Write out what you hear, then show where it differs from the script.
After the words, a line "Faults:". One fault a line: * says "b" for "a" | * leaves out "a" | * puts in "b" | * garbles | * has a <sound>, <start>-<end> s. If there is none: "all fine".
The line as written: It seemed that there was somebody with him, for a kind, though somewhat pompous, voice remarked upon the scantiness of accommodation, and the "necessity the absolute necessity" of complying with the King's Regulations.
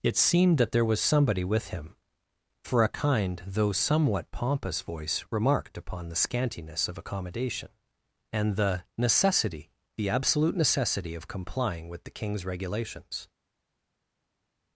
It seemed that there was somebody with him, for a kind, though somewhat pompous, voice remarked upon the scantiness of accommodation, and the "necessity the absolute necessity" of complying with the King's Regulations.
Faults:
all fine